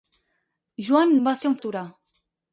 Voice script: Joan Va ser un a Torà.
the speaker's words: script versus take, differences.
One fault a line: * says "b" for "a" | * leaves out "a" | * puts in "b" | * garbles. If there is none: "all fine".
all fine